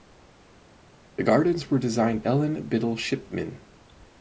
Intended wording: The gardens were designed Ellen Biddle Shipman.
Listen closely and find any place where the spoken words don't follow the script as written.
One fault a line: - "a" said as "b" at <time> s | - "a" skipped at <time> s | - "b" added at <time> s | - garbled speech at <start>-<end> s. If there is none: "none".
none